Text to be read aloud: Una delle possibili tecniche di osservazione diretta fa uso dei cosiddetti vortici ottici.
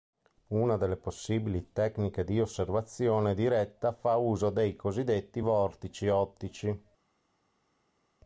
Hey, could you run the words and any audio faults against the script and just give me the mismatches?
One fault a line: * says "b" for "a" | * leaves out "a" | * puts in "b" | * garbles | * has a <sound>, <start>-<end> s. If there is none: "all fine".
all fine